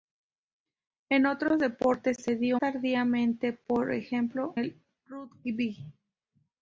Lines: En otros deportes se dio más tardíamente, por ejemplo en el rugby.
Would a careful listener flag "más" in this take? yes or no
yes